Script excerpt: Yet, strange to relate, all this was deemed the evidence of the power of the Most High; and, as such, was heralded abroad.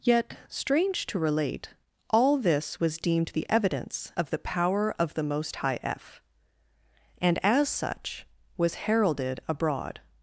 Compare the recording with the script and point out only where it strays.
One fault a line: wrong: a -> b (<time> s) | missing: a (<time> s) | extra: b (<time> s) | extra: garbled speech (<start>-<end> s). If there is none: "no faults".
extra: f (5.8 s)